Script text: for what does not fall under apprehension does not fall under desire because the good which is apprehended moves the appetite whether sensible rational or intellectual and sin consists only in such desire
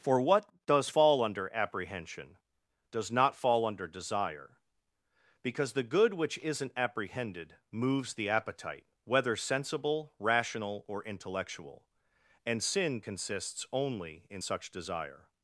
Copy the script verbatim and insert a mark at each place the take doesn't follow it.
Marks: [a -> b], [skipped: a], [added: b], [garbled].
for what does [skipped: not] fall under apprehension does not fall under desire because the good which [is -> isn't] apprehended moves the appetite whether sensible rational or intellectual and sin consists only in such desire